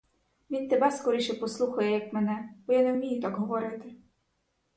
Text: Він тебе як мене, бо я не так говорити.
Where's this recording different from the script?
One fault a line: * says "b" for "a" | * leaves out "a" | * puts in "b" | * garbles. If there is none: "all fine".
* puts in "скоріше послухає"
* puts in "вмію"